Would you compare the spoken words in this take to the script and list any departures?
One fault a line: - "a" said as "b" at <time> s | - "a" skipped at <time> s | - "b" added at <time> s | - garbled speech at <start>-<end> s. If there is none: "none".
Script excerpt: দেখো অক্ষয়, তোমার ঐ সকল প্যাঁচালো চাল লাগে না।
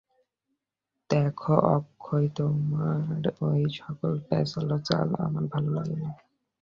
- "আমার ভালো" added at 5.3 s